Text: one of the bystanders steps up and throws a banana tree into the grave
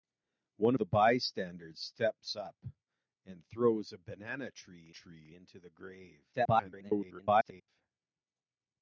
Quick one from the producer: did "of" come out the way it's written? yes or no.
no